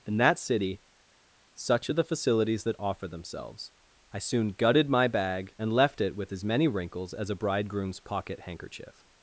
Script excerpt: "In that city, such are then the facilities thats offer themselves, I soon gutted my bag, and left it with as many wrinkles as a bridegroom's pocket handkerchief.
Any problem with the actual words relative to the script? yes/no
yes